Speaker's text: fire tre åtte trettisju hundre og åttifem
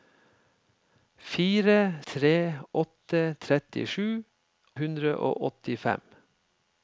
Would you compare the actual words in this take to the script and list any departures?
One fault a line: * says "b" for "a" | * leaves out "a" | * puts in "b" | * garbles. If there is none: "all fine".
all fine